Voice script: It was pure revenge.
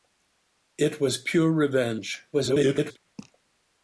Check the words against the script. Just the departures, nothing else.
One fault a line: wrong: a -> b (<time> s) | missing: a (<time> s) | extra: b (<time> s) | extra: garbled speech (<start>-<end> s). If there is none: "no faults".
extra: garbled speech (2.3-3.0 s)